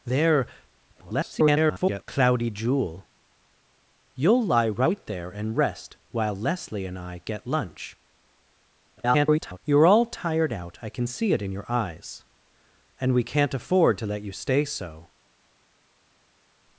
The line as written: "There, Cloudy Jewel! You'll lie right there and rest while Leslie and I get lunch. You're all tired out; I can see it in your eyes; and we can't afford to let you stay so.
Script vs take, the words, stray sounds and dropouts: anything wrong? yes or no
yes